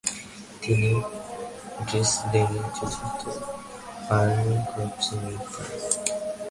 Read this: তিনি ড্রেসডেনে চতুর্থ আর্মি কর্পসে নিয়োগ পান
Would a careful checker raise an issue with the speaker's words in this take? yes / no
no